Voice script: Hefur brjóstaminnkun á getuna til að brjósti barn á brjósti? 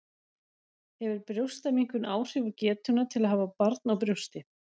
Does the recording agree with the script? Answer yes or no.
no